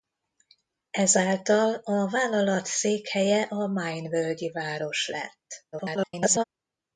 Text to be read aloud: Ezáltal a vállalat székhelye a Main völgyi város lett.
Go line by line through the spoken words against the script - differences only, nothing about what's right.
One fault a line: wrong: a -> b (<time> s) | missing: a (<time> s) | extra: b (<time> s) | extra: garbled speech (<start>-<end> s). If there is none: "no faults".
extra: garbled speech (5.7-6.4 s)